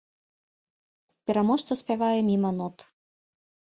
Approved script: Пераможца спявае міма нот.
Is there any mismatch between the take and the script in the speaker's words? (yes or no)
no